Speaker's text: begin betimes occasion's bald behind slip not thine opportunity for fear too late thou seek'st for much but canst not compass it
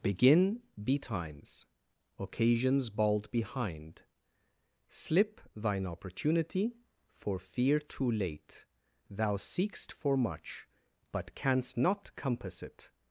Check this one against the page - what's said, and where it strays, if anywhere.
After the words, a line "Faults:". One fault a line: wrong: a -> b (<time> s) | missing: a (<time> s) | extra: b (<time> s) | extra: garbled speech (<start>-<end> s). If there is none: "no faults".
begin betimes occasion's bald behind slip thine opportunity for fear too late thou seek'st for much but canst not compass it
Faults:
missing: not (5.4 s)